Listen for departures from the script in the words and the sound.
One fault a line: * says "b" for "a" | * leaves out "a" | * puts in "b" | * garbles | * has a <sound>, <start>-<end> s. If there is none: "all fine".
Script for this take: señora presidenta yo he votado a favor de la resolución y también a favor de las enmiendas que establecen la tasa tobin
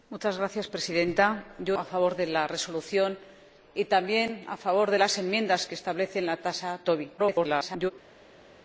* leaves out "he votado"
* garbles